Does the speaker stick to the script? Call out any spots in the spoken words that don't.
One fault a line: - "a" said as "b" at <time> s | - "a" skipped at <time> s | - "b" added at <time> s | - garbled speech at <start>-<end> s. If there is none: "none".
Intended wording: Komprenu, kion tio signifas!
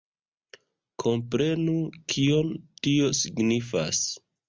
none